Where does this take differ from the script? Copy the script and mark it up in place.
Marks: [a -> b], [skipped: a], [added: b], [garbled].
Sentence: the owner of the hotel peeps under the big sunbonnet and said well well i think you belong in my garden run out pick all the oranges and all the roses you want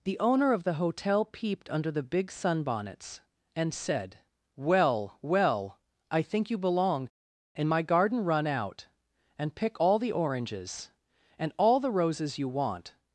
the owner of the hotel [peeps -> peeped] under the big [sunbonnet -> sunbonnets] and said well well i think you belong in my garden run out [added: and] pick all the oranges and all the roses you want